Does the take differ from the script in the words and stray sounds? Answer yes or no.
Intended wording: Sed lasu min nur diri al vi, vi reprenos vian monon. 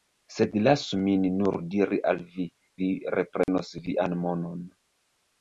yes